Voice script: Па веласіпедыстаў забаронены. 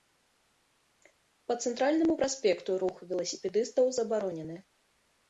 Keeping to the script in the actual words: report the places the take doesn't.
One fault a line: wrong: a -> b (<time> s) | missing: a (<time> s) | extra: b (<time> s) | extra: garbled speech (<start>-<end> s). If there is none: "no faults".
extra: цэнтральнаму праспекту рух (1.6 s)